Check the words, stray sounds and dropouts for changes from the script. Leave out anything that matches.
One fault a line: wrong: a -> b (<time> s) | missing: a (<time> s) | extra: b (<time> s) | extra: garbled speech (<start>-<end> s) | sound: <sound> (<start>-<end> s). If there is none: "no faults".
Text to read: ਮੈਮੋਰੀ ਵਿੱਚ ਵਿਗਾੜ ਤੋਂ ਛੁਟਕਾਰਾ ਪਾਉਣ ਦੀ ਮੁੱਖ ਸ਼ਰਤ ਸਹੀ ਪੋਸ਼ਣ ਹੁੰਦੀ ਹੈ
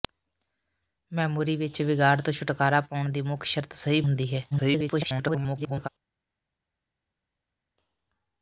missing: ਪੋਸ਼ਣ (4.0 s)
extra: garbled speech (4.5-5.9 s)